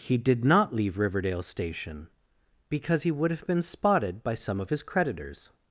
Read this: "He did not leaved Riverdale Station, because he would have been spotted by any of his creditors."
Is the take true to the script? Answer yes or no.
no